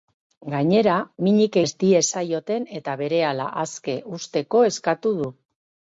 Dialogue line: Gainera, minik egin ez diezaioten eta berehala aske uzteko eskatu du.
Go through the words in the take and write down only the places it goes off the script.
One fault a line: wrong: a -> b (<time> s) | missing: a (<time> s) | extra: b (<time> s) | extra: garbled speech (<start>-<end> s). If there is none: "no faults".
missing: egin (1.6 s)